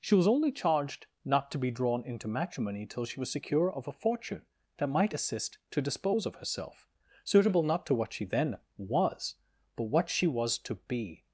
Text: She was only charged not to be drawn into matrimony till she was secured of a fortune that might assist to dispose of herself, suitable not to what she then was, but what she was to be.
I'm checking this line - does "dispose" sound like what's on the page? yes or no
yes